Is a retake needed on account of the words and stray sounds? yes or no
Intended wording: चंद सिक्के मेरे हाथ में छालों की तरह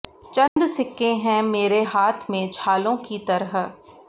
yes